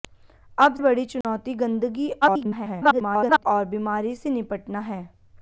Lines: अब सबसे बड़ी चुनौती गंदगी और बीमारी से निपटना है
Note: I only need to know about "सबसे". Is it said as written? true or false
false